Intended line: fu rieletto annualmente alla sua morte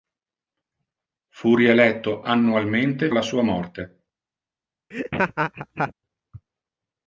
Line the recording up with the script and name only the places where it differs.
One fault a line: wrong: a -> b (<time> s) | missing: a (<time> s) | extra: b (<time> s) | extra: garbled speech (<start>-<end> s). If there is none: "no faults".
no faults